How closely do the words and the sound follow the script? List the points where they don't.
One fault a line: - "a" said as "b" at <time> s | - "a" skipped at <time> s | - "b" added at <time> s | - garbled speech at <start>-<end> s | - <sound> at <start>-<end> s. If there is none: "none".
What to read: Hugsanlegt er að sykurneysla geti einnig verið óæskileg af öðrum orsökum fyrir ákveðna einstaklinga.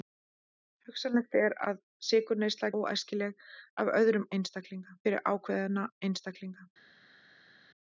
- "geti einnig verið" skipped at 2.7 s
- "orsökum" said as "einstaklinga" at 4.4 s